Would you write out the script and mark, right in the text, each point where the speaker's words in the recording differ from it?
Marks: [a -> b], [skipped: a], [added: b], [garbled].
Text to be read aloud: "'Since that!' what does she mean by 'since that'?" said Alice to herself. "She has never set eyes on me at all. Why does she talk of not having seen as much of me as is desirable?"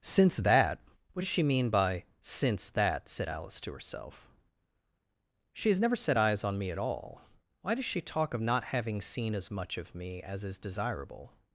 "'Since that!' what does she mean by 'since that'?" said Alice to herself. "She has never set eyes on me at all. Why does she talk of not having seen as much of me as is desirable?"